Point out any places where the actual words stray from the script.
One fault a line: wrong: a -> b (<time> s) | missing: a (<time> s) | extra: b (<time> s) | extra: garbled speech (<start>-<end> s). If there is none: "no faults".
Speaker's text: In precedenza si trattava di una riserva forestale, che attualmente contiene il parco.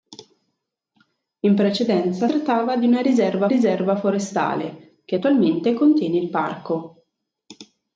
missing: si (2.3 s)
extra: riserva (3.5 s)